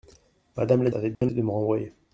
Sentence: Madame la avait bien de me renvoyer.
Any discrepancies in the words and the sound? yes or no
yes